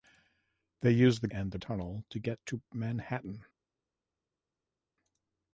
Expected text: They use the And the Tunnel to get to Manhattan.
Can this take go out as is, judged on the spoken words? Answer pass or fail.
pass